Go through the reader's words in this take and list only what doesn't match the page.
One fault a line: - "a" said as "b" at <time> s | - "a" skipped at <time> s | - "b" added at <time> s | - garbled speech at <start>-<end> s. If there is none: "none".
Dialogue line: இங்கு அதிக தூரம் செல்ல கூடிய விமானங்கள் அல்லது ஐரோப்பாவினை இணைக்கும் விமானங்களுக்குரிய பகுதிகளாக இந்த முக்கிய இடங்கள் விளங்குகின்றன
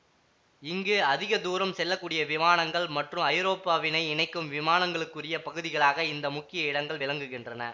- "அல்லது" said as "மற்றும்" at 2.9 s